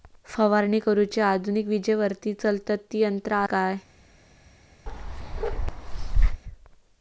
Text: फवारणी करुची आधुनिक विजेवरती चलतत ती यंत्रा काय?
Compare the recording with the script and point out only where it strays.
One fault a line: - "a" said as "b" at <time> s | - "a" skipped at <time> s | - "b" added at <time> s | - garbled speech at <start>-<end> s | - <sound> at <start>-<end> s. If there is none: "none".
- bark at 4.9-6.4 s